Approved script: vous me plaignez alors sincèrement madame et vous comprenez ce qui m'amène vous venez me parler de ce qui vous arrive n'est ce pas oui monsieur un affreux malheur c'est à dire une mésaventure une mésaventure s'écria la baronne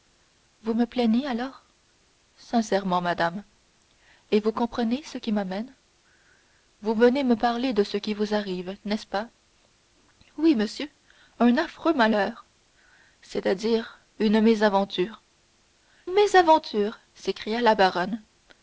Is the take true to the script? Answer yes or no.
no